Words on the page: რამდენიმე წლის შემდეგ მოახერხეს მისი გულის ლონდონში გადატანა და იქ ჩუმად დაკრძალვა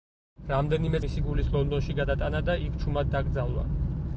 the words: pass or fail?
fail